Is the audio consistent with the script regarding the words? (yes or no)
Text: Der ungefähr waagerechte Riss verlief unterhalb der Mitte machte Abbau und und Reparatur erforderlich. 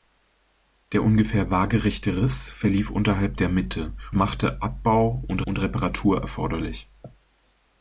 yes